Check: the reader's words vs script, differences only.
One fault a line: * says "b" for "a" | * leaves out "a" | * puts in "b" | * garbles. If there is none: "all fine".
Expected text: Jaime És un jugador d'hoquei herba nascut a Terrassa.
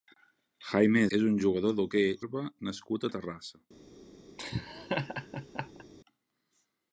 all fine